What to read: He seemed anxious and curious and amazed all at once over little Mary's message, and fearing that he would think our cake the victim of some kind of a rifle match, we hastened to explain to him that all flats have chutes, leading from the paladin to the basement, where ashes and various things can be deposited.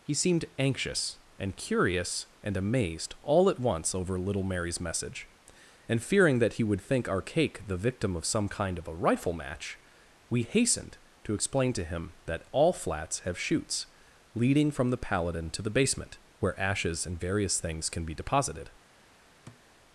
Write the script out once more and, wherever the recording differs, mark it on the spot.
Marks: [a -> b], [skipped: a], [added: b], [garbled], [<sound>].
He seemed anxious and curious and amazed all at once over little Mary's message, and fearing that he would think our cake the victim of some kind of a rifle match, we hastened to explain to him that all flats have chutes, leading from the paladin to the basement, where ashes and various things can be deposited. [thud]